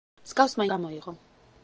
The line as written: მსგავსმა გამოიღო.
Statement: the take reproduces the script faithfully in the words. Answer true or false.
true